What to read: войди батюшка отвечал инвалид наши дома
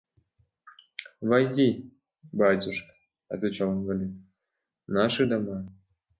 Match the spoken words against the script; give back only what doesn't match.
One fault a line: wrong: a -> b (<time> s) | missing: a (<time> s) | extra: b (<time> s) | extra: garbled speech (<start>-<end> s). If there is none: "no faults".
no faults